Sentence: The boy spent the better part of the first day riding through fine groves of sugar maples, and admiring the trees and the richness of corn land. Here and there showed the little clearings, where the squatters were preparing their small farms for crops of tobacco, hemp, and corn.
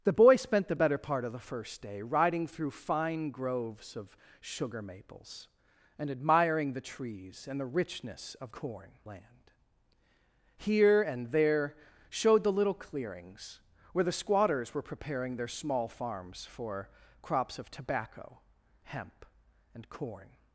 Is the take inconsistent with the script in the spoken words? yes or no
no